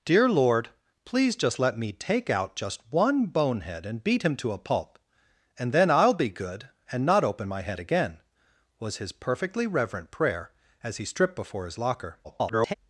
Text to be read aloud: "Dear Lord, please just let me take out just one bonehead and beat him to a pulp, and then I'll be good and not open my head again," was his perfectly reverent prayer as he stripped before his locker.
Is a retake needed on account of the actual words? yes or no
yes